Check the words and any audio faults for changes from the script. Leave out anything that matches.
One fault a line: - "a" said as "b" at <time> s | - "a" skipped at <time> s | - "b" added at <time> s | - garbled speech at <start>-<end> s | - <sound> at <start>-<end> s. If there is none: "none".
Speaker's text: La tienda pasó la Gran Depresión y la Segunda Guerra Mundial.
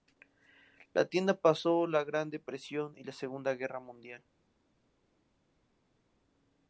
none